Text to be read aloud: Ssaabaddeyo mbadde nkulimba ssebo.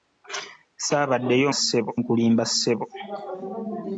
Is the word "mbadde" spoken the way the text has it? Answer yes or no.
no